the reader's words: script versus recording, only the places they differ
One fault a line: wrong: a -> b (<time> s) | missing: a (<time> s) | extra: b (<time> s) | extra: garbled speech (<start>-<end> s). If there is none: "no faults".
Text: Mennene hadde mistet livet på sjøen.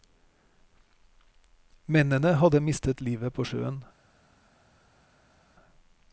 no faults